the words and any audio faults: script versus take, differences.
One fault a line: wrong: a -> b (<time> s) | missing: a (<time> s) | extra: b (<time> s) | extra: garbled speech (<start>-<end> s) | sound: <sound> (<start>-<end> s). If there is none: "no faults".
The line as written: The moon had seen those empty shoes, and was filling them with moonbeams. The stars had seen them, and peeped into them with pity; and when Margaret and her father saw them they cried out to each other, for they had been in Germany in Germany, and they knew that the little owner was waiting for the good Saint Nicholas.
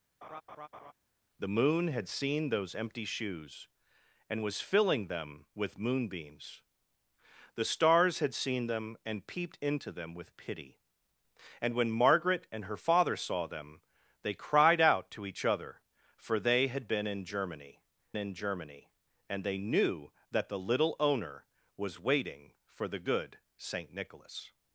sound: laugh (0.2-0.9 s)